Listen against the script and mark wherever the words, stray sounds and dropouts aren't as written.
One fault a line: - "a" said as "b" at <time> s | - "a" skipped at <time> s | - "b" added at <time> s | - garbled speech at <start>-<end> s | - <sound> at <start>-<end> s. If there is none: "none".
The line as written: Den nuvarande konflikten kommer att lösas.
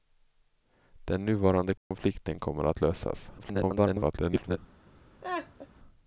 - dropout at 1.8-1.9 s
- garbled speech at 3.4-4.6 s
- laugh at 5.2-5.7 s